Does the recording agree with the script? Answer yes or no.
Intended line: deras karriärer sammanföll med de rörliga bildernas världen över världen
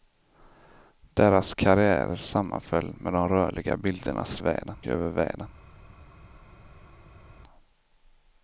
yes